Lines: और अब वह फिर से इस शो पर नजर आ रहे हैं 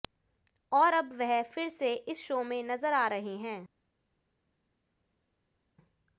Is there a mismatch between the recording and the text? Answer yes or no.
yes